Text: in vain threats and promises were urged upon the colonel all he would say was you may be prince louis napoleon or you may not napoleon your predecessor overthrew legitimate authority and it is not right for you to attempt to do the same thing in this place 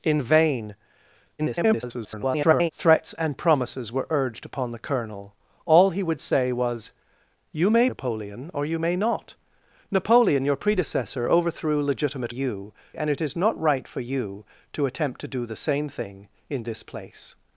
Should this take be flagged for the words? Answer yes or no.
yes